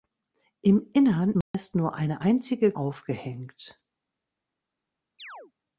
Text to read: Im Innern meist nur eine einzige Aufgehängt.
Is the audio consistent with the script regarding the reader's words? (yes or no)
yes